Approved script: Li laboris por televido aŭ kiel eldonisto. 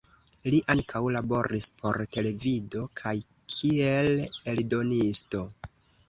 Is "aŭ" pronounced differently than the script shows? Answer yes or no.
yes